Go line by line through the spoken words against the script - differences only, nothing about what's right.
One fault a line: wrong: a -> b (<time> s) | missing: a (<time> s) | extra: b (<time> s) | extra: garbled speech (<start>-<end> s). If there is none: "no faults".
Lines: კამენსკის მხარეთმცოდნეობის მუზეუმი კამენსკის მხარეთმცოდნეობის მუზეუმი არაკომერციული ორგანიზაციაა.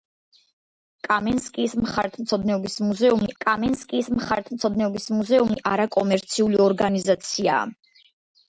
no faults